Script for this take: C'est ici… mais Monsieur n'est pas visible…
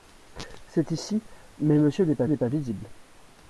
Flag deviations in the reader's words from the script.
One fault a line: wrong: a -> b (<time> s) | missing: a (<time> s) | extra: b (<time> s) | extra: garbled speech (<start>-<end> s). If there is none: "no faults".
extra: n'est pas (2.3 s)